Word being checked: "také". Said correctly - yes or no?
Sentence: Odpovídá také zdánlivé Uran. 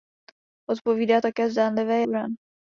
yes